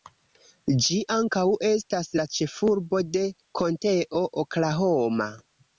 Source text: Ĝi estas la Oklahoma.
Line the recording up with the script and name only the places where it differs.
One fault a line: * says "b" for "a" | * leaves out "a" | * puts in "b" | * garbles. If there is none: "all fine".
* puts in "ankaŭ"
* puts in "ĉefurbo de Konteo"